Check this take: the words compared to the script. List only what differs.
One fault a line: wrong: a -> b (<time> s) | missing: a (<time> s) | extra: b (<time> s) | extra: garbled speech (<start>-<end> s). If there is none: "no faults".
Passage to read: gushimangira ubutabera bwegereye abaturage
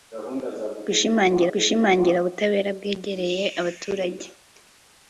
extra: gushimangira (1.5 s)